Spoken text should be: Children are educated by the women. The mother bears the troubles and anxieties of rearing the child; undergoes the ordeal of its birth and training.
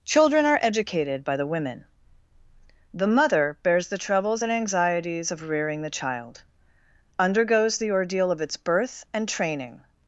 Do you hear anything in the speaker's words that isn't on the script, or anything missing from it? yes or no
no